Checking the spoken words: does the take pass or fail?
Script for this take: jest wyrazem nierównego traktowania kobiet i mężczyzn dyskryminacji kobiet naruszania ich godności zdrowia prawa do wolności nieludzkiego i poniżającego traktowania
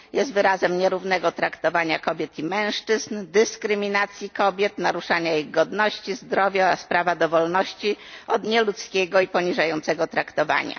fail